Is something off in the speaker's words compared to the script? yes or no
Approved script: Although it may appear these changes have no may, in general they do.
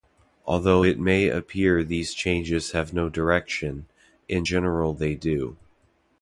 yes